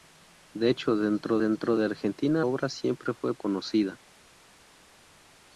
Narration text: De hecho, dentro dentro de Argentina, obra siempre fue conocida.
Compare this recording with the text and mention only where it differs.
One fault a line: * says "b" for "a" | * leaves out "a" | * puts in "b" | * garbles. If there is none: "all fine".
all fine